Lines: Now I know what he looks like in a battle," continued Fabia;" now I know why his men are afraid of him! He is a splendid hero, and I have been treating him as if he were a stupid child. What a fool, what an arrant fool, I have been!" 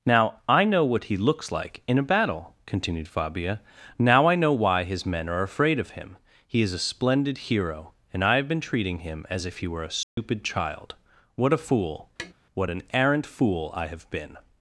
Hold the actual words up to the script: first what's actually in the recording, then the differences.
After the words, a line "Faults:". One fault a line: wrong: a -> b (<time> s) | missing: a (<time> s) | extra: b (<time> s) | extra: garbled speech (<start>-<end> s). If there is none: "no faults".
Now I know what he looks like in a battle," continued Fabia;" now I know why his men are afraid of him! He is a splendid hero, and I have been treating him as if he were a stupid child. What a fool, what an arrant fool, I have been!"
Faults:
no faults